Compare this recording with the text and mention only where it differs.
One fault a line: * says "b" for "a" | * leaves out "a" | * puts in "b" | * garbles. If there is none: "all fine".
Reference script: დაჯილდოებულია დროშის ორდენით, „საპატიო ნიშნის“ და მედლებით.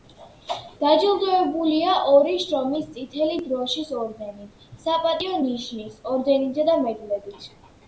* puts in "ორი შრომის წითელი"
* puts in "ორდენითა"